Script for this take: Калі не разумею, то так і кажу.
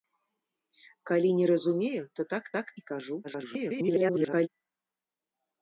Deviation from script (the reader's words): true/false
true